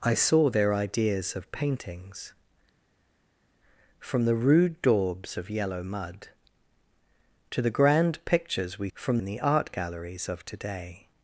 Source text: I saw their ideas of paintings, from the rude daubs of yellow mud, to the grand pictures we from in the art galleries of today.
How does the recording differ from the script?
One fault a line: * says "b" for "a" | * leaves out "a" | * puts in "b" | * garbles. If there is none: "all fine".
all fine